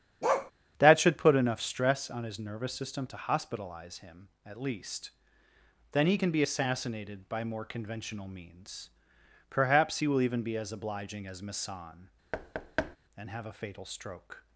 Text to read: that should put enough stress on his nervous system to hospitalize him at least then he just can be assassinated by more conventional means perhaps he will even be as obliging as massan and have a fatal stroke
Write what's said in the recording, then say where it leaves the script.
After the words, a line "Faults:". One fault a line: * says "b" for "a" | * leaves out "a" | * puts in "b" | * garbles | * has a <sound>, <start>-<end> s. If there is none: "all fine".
that should put enough stress on his nervous system to hospitalize him at least then he can be assassinated by more conventional means perhaps he will even be as obliging as massan and have a fatal stroke
Faults:
* has a bark, 0.2-0.5 s
* leaves out "just"
* has a thud, 12.3-13.0 s